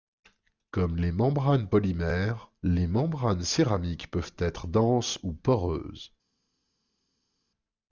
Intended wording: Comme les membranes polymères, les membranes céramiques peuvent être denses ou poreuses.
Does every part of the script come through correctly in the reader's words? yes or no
yes